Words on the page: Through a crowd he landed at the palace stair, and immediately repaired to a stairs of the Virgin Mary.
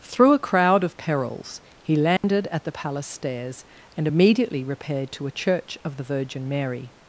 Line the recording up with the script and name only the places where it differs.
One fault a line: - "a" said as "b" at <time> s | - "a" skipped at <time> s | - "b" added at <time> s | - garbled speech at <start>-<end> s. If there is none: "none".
- "of perils" added at 0.8 s
- "stair" said as "stairs" at 3.1 s
- "stairs" said as "church" at 5.3 s